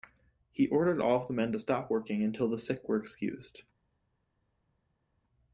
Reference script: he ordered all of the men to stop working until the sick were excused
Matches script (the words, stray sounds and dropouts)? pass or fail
pass